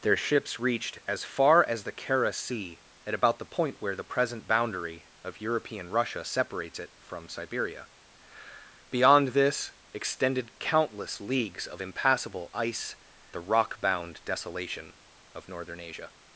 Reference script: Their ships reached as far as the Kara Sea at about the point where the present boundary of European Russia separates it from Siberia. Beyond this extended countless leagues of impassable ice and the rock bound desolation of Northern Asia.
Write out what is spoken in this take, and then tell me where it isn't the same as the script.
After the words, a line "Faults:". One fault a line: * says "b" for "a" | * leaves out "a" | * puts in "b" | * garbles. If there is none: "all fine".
Their ships reached as far as the Kara Sea at about the point where the present boundary of European Russia separates it from Siberia. Beyond this extended countless leagues of impassable ice the rock bound desolation of Northern Asia.
Faults:
* leaves out "and"